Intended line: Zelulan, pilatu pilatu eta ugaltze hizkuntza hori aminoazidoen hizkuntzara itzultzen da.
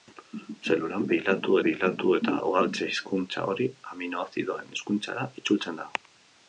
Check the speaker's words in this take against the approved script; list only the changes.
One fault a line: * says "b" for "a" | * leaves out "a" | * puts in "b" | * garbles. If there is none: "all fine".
all fine